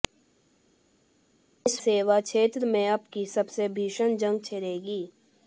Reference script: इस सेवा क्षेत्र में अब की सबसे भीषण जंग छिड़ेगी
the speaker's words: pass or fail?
pass